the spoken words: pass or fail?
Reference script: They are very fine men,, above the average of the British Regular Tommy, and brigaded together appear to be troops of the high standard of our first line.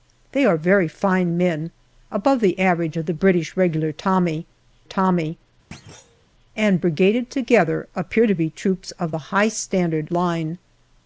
fail